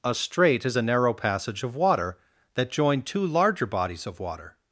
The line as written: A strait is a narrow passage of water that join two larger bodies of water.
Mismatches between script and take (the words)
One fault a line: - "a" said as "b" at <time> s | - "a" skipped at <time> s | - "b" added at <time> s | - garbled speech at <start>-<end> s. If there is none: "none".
none